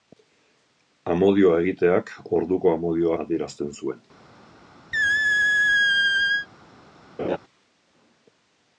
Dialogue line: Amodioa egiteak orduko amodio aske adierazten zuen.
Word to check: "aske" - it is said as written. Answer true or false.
false